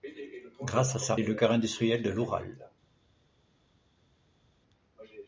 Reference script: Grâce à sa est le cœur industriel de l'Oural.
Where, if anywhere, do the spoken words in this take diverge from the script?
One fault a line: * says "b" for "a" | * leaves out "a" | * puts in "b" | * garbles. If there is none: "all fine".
all fine